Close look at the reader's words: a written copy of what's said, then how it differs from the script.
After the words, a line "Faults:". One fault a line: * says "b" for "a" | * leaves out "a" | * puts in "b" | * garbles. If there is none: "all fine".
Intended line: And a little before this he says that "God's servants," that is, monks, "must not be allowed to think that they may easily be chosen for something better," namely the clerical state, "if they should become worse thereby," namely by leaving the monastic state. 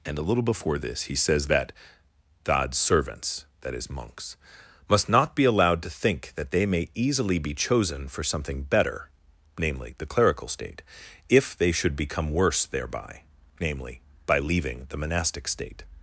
And a little before this he says that "God's servants," that is, monks, "must not be allowed to think that they may easily be chosen for something better," namely the clerical state, "if they should become worse thereby," namely by leaving the monastic state.
Faults:
all fine